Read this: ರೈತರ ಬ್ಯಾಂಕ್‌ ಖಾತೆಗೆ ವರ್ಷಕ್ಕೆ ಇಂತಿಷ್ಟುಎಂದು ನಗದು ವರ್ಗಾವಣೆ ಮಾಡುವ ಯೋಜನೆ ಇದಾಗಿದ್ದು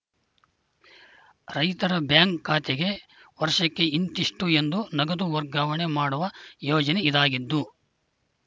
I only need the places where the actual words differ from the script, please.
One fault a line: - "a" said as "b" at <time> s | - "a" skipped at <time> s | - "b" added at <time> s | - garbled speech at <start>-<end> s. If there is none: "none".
none